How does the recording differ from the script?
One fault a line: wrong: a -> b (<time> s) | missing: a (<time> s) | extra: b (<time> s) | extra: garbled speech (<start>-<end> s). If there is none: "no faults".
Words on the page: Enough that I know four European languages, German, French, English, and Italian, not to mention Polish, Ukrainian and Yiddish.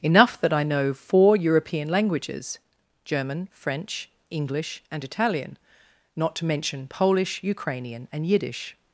no faults